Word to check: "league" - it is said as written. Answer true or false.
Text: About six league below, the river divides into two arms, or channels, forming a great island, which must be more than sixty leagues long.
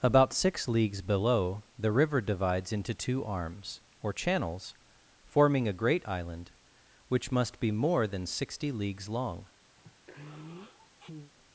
false